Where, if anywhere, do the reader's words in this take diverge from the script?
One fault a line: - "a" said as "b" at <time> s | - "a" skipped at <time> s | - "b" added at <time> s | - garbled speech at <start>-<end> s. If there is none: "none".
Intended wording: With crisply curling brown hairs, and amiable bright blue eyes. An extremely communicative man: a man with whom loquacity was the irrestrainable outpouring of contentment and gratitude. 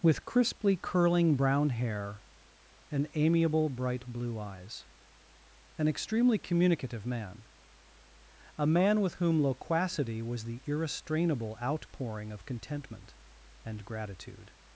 - "hairs" said as "hair" at 1.7 s